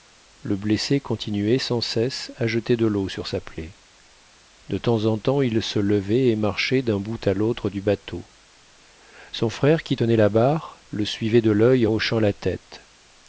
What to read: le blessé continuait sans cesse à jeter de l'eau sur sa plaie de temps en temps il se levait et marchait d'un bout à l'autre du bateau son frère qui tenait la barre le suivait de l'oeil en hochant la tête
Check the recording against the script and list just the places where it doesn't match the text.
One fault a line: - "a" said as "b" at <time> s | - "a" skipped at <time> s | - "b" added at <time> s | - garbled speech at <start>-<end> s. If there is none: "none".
- "en" skipped at 11.9 s